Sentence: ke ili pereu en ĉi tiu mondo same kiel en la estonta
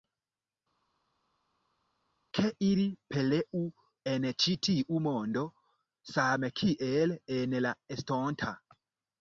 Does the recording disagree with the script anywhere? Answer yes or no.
no